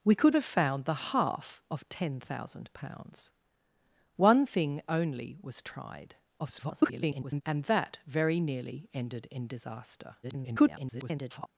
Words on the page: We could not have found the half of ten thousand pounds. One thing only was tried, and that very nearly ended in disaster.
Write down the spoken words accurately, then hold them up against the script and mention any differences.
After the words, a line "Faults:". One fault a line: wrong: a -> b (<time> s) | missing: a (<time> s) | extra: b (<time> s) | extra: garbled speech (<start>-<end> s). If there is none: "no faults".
We could have found the half of ten thousand pounds. One thing only was tried, [garbled] and that very nearly ended in disaster. [garbled]
Faults:
missing: not (0.3 s)
extra: garbled speech (6.4-7.4 s)
extra: garbled speech (10.2-11.5 s)